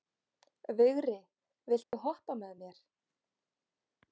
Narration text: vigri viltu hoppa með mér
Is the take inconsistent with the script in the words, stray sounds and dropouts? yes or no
yes